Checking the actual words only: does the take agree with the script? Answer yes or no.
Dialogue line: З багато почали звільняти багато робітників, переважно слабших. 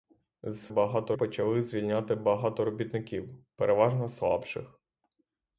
yes